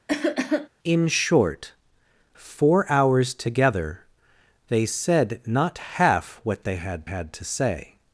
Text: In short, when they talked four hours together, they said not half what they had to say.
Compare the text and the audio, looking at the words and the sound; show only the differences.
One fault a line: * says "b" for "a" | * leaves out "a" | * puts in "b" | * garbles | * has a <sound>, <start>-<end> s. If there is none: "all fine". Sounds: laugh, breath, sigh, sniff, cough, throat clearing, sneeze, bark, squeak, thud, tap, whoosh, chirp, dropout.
* has a cough, 0.1-0.7 s
* leaves out "when they talked"
* puts in "had"